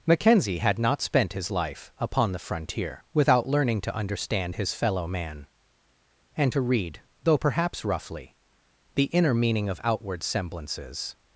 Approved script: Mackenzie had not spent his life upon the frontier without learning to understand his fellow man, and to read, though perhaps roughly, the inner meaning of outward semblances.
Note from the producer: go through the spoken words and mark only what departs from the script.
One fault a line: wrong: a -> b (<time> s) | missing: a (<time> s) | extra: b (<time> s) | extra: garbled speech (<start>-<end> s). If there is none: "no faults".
no faults